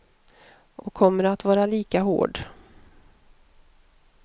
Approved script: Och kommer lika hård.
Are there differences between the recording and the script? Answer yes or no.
yes